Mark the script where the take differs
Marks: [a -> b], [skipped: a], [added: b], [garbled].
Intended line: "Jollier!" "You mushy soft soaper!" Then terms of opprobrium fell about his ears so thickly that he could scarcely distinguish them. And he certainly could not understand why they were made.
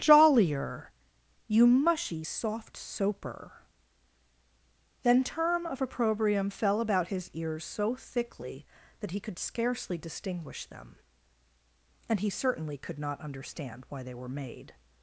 "Jollier!" "You mushy soft soaper!" Then [terms -> term] of opprobrium fell about his ears so thickly that he could scarcely distinguish them. And he certainly could not understand why they were made.